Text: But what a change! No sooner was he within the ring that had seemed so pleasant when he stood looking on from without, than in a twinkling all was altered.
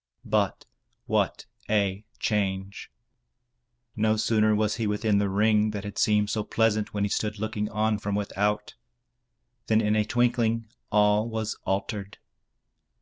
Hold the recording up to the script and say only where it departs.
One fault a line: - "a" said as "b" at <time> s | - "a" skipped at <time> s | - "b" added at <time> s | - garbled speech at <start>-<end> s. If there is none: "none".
none